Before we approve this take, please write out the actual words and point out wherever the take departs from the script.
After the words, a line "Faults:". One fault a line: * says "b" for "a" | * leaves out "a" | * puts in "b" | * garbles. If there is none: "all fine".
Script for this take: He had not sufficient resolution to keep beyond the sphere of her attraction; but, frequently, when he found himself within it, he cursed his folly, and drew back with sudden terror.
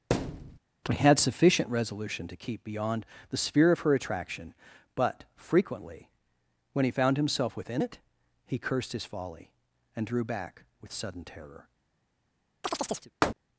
He had sufficient resolution to keep beyond the sphere of her attraction; but, frequently, when he found himself within it, he cursed his folly, and drew back with sudden terror.
Faults:
* leaves out "not"